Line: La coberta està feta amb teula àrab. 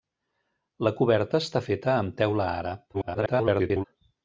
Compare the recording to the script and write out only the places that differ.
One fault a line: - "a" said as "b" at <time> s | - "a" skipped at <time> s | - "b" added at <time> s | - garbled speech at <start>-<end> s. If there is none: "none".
- garbled speech at 2.9-3.8 s